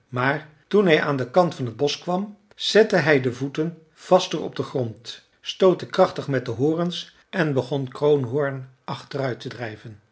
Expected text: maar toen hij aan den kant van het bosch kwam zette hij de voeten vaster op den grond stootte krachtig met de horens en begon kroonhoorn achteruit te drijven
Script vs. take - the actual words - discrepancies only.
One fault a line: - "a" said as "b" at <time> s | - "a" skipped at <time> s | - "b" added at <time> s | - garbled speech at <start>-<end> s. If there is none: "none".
none